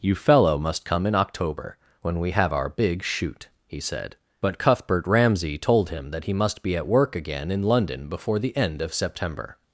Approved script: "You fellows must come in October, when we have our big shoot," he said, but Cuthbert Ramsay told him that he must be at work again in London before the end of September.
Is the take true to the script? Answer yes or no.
no